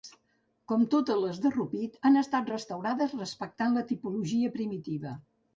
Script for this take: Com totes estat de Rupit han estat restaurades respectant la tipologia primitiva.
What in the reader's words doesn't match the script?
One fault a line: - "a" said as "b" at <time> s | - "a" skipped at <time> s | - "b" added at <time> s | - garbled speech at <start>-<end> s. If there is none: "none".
- "estat" said as "les" at 1.2 s